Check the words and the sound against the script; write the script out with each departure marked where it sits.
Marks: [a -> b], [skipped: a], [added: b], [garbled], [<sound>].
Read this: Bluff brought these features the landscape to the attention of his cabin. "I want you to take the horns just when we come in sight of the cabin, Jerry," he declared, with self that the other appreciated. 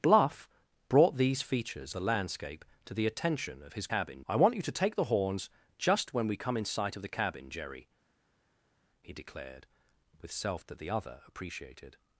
Bluff brought these features the landscape to the attention of his cabin. "I want you to take the horns just when we come in sight of the cabin, Jerry," he declared, with self that the other appreciated.